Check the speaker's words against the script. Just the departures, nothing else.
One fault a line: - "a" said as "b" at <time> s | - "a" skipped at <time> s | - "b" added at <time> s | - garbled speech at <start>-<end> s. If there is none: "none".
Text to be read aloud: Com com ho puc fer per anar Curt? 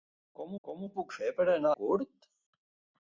none